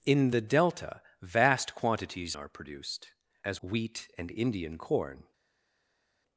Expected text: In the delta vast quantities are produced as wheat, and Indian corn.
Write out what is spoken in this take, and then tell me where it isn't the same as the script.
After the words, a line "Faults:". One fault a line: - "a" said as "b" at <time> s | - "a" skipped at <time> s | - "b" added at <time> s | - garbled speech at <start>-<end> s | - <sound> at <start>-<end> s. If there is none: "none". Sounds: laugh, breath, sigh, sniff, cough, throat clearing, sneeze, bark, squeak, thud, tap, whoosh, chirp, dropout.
In the delta vast quantities are produced as wheat, and Indian corn.
Faults:
none